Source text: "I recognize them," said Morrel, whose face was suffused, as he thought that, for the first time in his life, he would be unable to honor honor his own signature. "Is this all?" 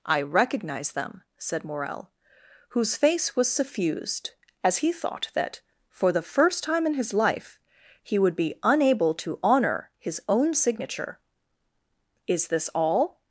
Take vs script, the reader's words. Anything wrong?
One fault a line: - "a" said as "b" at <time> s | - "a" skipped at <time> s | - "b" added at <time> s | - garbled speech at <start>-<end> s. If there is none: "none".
- "honor" skipped at 9.9 s